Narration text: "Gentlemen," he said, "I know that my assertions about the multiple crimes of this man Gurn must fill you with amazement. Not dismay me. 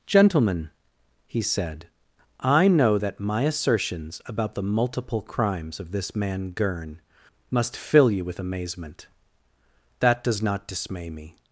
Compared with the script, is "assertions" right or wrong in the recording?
right